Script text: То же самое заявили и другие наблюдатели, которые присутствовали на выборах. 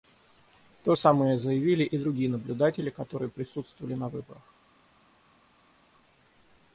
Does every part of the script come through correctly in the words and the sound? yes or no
no